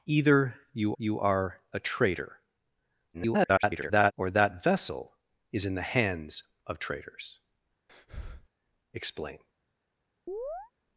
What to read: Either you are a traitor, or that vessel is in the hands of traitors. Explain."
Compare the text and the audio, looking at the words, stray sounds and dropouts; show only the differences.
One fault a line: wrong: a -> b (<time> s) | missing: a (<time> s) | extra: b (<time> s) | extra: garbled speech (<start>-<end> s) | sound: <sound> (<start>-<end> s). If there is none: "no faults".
extra: you (1.0 s)
extra: garbled speech (3.1-4.1 s)
sound: breath (7.9-8.5 s)
sound: chirp (10.3-10.7 s)